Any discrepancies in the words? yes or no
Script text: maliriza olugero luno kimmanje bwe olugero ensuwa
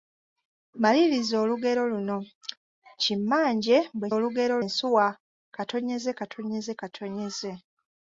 no